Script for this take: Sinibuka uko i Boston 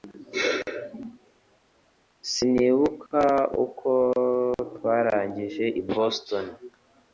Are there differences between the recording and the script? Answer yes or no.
yes